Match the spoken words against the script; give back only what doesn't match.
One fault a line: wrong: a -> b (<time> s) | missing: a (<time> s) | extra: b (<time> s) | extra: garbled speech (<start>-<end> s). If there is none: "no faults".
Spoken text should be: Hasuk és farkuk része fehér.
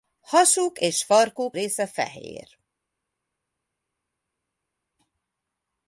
no faults